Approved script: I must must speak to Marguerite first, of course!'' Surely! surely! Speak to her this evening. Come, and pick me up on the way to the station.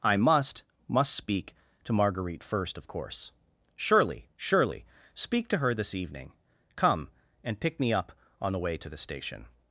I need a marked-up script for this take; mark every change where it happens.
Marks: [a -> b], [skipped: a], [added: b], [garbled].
I must must speak to Marguerite first, of course!'' Surely! surely! Speak to her this evening. Come, and pick me up on the way to the station.